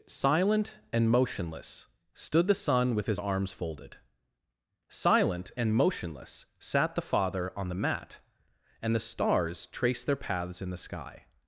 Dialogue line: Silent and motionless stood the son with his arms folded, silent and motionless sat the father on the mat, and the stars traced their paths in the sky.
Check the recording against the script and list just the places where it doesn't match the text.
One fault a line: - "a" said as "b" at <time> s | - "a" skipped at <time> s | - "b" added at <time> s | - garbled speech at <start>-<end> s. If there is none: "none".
none